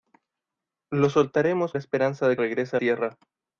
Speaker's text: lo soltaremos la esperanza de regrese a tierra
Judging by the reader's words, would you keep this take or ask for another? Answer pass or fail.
pass